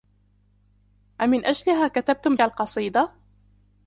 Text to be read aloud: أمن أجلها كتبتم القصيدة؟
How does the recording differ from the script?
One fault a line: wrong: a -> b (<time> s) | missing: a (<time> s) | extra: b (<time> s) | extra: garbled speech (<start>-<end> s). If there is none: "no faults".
no faults